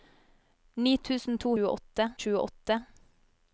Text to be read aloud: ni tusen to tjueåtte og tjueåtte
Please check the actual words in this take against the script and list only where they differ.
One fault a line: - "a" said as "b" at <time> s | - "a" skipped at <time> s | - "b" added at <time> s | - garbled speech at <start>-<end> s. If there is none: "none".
none